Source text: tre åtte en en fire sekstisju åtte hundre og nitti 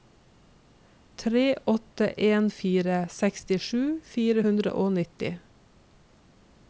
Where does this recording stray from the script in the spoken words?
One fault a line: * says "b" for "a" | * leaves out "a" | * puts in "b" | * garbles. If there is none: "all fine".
* leaves out "en"
* says "fire" for "åtte"